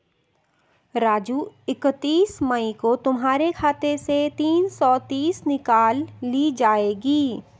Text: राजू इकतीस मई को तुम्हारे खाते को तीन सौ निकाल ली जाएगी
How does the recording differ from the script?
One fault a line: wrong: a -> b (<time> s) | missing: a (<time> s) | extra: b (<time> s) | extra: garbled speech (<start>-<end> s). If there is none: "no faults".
wrong: को -> से (4.0 s)
extra: तीस (5.1 s)